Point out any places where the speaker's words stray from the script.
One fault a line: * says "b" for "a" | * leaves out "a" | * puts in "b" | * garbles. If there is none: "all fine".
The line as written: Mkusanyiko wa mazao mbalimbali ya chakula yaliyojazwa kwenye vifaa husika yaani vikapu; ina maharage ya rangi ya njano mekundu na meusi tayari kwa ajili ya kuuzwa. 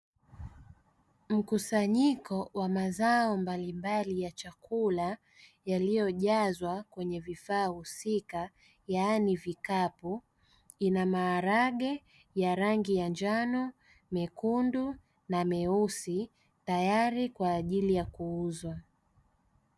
all fine